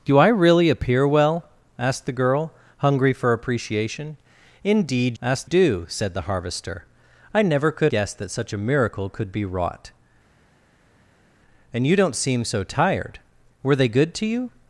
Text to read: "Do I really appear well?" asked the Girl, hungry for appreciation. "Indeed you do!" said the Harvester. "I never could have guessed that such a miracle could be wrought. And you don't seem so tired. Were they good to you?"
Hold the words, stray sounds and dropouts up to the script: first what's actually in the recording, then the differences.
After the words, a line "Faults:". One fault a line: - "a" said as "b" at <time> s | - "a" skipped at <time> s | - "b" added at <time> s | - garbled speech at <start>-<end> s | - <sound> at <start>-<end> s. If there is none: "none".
"Do I really appear well?" asked the Girl, hungry for appreciation. "Indeed asked do!" said the Harvester. "I never could guessed that such a miracle could be wrought. And you don't seem so tired. Were they good to you?"
Faults:
- "you" said as "asked" at 5.2 s
- "have" skipped at 7.9 s